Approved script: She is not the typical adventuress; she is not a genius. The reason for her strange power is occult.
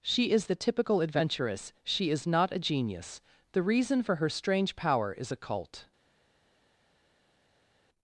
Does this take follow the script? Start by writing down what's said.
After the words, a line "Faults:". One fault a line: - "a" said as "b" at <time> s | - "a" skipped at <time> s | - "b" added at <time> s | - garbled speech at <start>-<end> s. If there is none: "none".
She is the typical adventuress; she is not a genius. The reason for her strange power is occult.
Faults:
- "not" skipped at 0.5 s